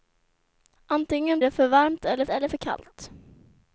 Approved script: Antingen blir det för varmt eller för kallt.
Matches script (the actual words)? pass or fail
fail